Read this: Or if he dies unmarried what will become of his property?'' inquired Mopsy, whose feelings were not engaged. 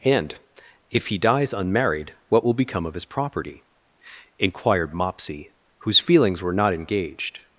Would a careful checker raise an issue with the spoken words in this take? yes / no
yes